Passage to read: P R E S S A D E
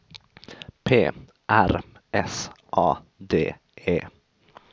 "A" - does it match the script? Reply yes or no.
yes